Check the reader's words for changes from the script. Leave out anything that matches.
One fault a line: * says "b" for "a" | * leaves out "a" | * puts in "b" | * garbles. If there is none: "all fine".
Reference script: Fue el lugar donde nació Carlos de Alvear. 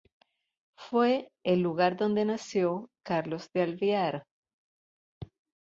all fine